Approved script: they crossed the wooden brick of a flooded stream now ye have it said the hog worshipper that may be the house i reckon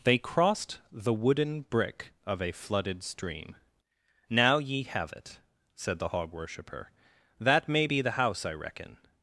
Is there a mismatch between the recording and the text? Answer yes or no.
no